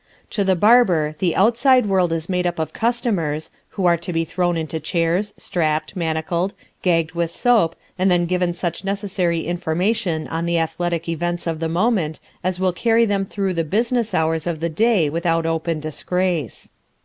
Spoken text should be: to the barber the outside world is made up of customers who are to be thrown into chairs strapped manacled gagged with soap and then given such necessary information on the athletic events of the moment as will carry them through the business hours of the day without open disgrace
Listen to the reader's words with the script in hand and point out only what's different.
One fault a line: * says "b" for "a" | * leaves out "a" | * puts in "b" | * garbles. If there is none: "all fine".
all fine